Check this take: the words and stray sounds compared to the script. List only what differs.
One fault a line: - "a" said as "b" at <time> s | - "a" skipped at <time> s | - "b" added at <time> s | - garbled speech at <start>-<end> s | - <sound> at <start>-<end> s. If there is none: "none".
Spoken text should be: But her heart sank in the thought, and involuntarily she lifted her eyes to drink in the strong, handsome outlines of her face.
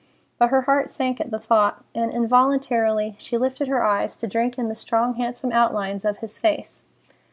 - "in" said as "at" at 1.2 s
- "her" said as "his" at 6.2 s